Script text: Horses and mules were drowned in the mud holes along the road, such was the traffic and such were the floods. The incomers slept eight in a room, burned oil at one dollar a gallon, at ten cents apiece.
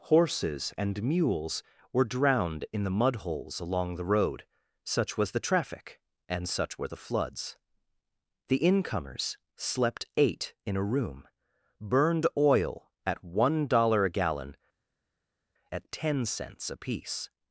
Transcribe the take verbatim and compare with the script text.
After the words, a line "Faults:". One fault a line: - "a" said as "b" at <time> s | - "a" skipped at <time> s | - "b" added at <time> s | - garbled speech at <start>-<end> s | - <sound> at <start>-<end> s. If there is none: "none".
Horses and mules were drowned in the mud holes along the road, such was the traffic and such were the floods. The incomers slept eight in a room, burned oil at one dollar a gallon, at ten cents apiece.
Faults:
none